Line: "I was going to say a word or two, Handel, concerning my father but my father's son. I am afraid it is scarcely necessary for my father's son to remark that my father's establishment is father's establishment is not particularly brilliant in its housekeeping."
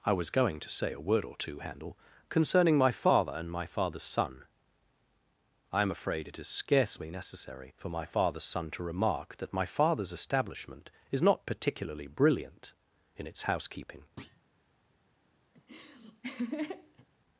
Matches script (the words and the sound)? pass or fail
fail